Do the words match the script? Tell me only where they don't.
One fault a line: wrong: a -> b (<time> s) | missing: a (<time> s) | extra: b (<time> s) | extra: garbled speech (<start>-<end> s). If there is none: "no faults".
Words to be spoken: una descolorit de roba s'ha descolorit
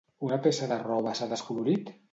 wrong: descolorit -> peça (0.5 s)